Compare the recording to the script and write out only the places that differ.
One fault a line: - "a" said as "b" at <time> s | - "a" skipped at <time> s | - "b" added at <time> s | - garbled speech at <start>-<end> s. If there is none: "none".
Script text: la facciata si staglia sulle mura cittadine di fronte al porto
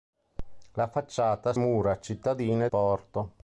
- "si staglia sulle" skipped at 1.5 s
- "di fronte al" skipped at 2.7 s